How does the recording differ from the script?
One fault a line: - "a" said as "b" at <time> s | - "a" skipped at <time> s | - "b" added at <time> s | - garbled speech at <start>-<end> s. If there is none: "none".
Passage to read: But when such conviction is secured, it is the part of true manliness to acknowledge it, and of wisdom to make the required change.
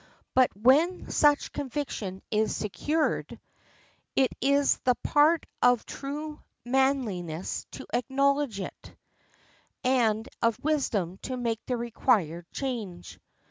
none